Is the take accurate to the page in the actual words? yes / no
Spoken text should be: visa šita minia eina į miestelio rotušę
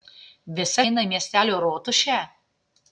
no